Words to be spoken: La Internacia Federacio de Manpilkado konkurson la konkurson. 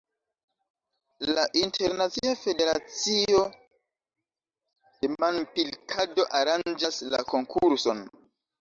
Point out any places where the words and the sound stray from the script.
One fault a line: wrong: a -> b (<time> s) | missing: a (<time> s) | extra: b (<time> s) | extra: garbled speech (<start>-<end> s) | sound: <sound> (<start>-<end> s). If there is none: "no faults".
wrong: konkurson -> aranĝas (6.4 s)